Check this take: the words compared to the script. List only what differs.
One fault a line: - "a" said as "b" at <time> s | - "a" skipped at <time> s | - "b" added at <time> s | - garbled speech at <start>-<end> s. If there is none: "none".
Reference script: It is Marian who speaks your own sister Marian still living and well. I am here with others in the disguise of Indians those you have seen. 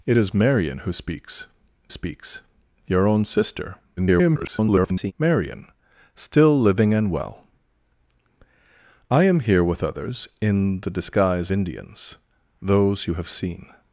- "speaks" added at 1.9 s
- garbled speech at 4.0-5.1 s
- "of" skipped at 11.5 s